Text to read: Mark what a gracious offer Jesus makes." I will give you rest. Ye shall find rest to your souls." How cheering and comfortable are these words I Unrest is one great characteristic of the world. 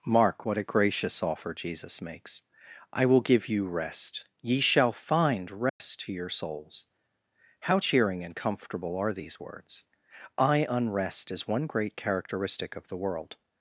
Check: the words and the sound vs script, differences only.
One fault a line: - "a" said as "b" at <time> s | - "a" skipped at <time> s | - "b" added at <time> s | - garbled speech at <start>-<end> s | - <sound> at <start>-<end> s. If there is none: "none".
- dropout at 5.7-5.8 s